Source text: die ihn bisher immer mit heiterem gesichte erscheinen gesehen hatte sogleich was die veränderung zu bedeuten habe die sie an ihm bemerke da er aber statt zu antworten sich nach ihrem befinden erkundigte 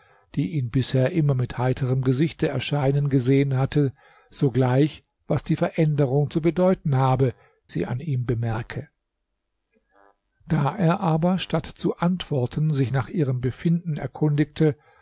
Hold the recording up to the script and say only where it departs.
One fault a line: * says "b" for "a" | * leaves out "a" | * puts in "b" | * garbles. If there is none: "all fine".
* leaves out "die"